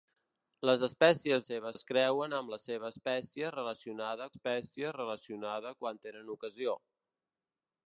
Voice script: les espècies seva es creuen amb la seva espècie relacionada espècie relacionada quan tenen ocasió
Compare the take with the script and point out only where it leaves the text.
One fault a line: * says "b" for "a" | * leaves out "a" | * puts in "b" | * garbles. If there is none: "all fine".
all fine